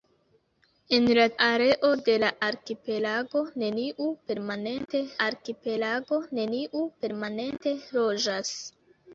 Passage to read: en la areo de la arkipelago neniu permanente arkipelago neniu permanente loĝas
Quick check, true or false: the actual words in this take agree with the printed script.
true